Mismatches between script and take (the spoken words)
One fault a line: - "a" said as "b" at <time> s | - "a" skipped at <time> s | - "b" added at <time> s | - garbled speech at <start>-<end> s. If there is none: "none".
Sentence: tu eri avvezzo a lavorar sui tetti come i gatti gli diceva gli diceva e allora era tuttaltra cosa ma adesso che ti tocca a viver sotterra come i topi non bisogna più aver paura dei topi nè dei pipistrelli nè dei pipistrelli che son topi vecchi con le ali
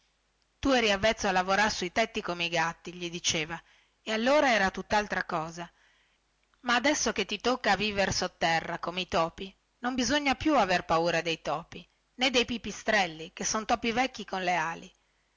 - "gli diceva" skipped at 3.6 s
- "nè dei pipistrelli" skipped at 13.3 s